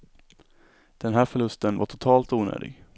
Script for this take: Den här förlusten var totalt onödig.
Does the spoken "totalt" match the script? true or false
true